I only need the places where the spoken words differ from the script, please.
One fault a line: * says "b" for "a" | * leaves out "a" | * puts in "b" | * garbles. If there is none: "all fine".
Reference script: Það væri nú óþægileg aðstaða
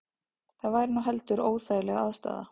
* puts in "heldur"